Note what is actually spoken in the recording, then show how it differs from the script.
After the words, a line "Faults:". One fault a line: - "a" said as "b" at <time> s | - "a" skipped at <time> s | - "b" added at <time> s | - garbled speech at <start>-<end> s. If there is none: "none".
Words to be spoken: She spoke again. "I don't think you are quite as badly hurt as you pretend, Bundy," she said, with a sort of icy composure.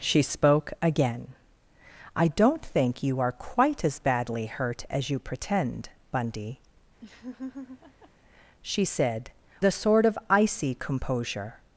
She spoke again. "I don't think you are quite as badly hurt as you pretend, Bundy," she said, a sort of icy composure.
Faults:
- "with" skipped at 9.3 s